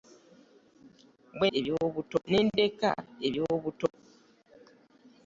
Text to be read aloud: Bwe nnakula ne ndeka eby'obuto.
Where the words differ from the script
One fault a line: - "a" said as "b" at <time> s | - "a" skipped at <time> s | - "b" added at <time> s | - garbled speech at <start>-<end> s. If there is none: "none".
- "nnakula" said as "eby'obuto" at 1.6 s